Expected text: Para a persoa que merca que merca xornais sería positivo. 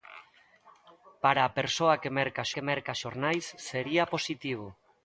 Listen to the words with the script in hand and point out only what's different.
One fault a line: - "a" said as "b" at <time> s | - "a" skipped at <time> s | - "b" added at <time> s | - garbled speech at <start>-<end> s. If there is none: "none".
none